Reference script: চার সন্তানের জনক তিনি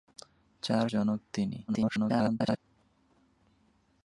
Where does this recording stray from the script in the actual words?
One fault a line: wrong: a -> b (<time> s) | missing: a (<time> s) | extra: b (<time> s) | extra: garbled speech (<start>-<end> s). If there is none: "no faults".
missing: সন্তানের (0.9 s)
extra: garbled speech (1.7-2.6 s)